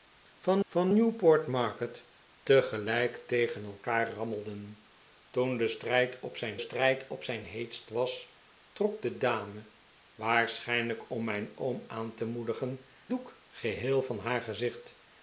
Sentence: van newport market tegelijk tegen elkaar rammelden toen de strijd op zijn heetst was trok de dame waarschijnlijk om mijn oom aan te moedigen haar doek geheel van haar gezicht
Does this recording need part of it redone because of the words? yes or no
yes